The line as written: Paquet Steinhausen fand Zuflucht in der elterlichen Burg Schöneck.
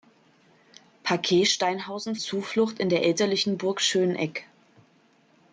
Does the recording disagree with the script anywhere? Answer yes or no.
yes